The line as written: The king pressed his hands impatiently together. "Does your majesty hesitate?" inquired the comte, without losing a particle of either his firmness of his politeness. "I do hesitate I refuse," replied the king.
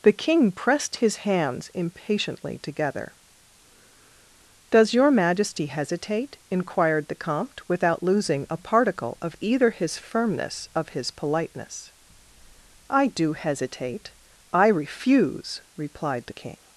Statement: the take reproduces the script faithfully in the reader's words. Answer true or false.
true